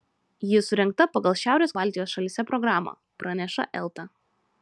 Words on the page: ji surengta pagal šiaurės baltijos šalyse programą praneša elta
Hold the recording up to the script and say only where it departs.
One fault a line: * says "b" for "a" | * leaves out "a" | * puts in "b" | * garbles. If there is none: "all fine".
all fine